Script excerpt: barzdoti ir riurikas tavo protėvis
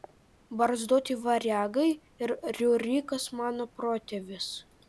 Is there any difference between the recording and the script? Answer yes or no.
yes